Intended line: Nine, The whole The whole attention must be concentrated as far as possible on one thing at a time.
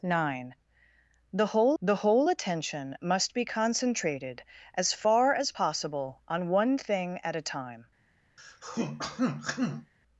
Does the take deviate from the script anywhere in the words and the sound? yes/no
yes